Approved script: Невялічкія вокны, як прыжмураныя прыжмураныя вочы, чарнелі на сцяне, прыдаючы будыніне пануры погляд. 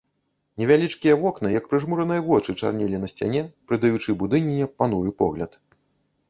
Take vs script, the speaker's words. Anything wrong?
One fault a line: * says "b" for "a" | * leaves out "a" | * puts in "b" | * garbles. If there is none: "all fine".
* leaves out "прыжмураныя"